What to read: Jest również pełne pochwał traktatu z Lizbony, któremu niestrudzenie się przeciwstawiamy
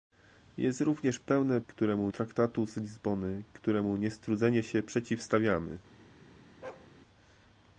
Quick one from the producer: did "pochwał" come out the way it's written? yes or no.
no